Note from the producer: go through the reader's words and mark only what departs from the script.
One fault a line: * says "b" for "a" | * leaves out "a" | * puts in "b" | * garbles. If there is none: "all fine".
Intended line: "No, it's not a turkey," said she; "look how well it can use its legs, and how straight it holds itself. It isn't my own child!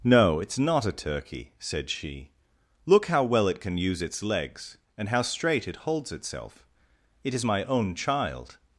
* says "is" for "isn't"